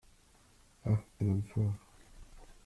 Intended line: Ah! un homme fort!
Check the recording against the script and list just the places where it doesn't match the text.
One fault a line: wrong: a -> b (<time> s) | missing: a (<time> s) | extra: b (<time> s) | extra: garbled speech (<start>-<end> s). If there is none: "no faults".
no faults